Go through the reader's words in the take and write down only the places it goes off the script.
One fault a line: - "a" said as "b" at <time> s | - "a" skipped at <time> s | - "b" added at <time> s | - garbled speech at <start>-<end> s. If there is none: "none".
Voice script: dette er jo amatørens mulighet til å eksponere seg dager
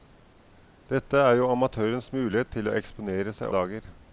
none